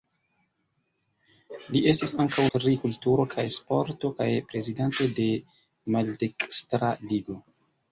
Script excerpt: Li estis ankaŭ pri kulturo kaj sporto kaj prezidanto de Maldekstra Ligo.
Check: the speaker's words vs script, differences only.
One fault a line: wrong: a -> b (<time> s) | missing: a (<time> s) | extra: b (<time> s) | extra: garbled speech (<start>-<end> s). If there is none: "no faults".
no faults